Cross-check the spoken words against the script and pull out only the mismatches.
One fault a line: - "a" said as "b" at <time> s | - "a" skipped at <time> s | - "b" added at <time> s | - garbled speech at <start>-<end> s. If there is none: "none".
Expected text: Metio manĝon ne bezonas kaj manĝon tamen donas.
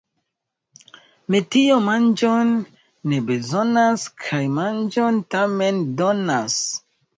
none